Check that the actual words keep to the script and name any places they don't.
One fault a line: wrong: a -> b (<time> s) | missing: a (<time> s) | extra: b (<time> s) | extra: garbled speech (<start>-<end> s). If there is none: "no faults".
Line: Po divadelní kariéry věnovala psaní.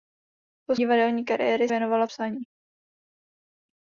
no faults